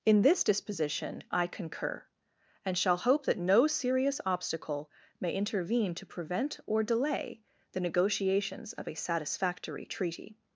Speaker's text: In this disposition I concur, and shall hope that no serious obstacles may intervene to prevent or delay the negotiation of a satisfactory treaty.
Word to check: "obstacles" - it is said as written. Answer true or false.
false